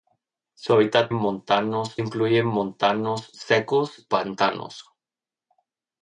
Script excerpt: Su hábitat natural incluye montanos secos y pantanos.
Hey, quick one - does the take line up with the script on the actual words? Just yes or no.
no